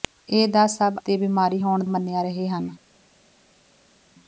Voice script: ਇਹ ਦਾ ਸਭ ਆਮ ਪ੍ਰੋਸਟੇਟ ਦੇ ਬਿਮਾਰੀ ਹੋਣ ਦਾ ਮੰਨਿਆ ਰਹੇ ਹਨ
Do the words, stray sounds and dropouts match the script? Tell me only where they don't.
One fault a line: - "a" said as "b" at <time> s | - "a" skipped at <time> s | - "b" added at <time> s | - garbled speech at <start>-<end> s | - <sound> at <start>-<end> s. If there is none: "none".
- "ਆਮ ਪ੍ਰੋਸਟੇਟ" skipped at 0.9 s
- "ਦਾ" skipped at 1.8 s